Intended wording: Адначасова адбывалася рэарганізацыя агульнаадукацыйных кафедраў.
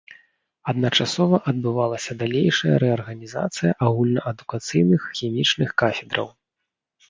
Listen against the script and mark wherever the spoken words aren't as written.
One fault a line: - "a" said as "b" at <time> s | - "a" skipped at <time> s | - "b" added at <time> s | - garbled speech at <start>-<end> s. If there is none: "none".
- "далейшая" added at 2.2 s
- "хімічных" added at 5.2 s